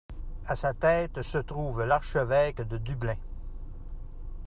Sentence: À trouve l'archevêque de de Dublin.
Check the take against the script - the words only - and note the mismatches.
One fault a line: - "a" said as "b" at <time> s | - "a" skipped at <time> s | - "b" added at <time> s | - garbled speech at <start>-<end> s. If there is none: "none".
- "sa tête se" added at 0.6 s
- "de" skipped at 2.8 s